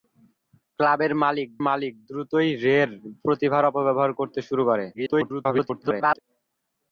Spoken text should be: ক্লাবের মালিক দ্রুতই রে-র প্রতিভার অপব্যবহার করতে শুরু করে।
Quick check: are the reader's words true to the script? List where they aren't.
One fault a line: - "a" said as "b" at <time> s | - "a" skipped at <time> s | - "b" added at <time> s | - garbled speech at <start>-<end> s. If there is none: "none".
- "মালিক" added at 1.7 s
- garbled speech at 4.9-6.2 s